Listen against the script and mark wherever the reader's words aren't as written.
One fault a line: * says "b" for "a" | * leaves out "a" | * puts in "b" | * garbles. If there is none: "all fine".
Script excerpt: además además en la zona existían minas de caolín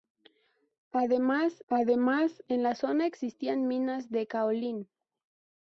all fine